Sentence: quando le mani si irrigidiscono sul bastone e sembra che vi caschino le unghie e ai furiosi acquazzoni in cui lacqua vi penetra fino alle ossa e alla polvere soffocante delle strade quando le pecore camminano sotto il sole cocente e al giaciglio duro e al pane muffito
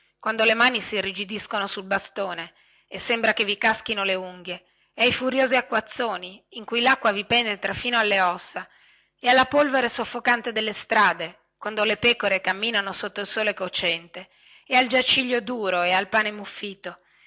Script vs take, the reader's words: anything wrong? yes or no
no